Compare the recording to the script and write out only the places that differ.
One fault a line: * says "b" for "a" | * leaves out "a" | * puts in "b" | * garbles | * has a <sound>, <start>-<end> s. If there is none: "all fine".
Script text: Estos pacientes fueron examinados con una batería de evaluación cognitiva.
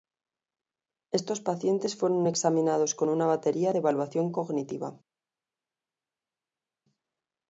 all fine